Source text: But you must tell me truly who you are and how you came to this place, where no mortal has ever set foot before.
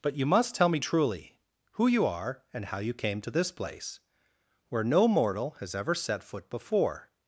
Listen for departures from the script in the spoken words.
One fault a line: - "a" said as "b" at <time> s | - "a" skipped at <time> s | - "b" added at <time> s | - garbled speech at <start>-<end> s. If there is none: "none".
none